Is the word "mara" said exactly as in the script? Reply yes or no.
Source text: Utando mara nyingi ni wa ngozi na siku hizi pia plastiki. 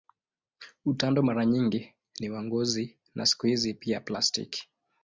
yes